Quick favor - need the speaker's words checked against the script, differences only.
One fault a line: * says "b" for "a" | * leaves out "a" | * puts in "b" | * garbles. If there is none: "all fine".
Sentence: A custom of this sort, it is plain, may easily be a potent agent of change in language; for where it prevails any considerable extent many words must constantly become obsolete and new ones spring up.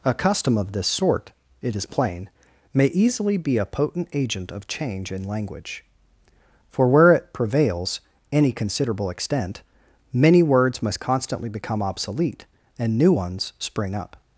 all fine